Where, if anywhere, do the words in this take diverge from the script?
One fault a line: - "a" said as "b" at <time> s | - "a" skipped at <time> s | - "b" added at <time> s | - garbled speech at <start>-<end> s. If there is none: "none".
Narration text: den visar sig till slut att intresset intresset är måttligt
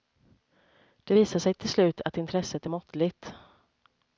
- "den" said as "det" at 1.0 s
- "intresset" skipped at 2.7 s